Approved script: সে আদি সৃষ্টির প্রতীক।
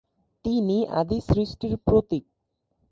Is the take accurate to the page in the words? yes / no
no